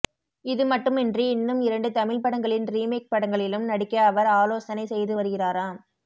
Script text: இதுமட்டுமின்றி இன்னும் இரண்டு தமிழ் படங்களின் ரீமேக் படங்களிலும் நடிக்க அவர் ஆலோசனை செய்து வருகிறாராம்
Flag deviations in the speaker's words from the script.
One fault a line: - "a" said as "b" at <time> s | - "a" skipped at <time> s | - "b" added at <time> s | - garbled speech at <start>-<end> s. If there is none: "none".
none